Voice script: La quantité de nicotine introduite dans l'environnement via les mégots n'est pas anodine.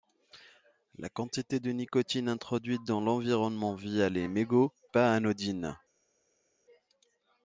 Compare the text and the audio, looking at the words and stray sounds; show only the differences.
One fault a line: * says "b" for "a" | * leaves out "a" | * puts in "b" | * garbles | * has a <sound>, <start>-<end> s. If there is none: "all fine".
* leaves out "n'est"